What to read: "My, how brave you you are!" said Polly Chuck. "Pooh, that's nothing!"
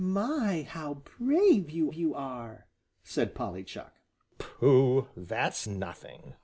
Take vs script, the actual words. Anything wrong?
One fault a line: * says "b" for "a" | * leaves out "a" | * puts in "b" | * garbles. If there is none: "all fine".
all fine